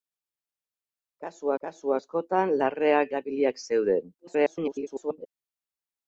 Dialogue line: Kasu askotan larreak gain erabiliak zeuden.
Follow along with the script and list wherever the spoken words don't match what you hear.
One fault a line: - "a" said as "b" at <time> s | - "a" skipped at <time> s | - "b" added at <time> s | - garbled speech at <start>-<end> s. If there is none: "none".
- "kasu" added at 1.7 s
- "gain" skipped at 3.1 s
- garbled speech at 4.2-5.3 s